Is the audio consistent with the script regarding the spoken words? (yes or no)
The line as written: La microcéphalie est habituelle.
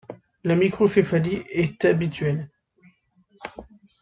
yes